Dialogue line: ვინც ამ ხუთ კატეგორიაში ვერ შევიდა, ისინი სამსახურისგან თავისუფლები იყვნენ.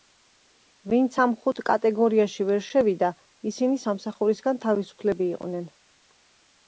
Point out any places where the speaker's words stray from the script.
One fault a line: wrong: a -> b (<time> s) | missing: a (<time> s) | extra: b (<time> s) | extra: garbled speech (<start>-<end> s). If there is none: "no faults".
no faults